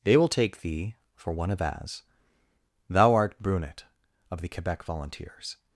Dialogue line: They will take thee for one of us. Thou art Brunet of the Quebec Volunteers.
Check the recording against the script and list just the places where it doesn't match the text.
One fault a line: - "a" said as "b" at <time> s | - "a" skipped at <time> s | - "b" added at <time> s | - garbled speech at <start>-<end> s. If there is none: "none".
- "us" said as "as" at 1.6 s